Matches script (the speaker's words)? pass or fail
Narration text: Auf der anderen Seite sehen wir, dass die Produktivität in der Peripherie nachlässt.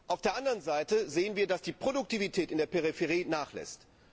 pass